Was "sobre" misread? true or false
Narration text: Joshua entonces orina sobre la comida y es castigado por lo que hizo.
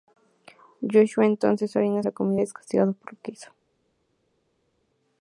true